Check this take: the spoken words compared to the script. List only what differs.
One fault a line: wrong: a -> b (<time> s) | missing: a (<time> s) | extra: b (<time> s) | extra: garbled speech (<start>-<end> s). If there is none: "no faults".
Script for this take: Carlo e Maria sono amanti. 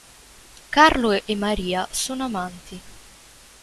no faults